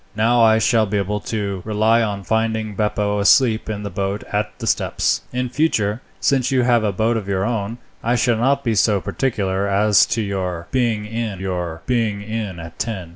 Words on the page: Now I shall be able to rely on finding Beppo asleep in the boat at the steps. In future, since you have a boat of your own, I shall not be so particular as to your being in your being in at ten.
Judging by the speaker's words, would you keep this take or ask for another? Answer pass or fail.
pass